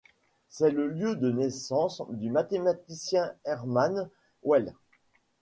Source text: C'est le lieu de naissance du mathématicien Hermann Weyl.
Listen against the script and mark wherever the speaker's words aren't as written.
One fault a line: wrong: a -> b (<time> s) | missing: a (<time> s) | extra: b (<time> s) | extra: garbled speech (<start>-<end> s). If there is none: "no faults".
no faults